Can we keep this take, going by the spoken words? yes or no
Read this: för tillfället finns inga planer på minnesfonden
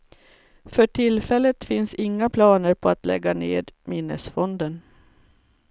no